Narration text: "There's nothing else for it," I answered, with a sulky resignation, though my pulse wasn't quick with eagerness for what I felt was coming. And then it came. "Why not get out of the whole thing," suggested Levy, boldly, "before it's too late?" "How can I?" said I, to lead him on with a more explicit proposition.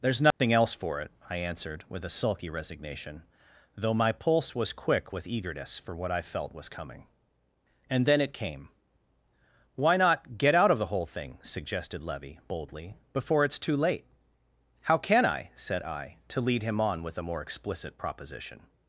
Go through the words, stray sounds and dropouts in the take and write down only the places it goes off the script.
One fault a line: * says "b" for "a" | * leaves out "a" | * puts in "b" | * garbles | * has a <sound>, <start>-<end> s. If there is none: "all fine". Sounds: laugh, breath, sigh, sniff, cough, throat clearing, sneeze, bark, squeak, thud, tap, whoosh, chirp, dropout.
* has a dropout, 0.3-0.4 s
* says "was" for "wasn't"